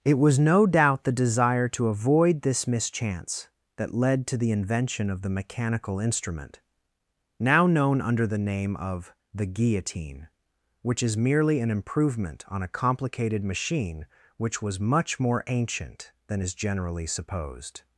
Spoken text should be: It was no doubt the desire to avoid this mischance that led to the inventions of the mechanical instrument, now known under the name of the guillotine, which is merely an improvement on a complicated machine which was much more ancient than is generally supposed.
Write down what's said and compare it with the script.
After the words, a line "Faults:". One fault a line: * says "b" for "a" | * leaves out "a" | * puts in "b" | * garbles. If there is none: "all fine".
It was no doubt the desire to avoid this mischance that led to the invention of the mechanical instrument, now known under the name of the guillotine, which is merely an improvement on a complicated machine which was much more ancient than is generally supposed.
Faults:
* says "invention" for "inventions"